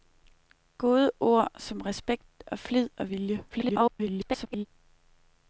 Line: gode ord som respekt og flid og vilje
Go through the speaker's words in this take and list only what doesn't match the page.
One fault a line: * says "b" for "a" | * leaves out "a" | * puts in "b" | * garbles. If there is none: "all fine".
* garbles